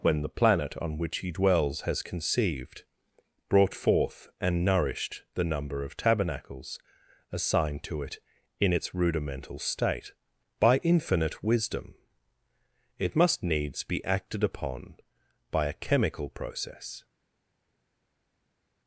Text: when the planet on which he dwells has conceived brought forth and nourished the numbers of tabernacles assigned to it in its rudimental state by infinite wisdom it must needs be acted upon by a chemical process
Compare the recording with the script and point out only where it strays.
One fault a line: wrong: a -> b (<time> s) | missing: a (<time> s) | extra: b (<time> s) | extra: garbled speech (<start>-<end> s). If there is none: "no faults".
wrong: numbers -> number (5.4 s)